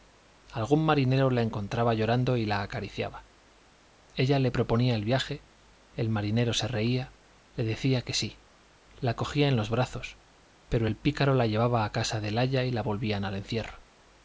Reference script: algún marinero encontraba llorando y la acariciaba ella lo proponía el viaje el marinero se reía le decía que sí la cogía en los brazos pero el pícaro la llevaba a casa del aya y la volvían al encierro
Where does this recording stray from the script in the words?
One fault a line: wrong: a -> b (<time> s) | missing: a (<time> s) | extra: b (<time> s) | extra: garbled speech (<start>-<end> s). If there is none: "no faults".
extra: la (1.3 s)
wrong: lo -> le (4.4 s)